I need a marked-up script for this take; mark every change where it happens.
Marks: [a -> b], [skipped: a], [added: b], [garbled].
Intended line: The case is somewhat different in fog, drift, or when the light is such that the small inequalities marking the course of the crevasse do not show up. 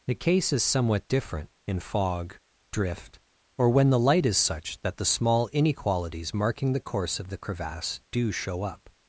The case is somewhat different in fog, drift, or when the light is such that the small inequalities marking the course of the crevasse do [skipped: not] show up.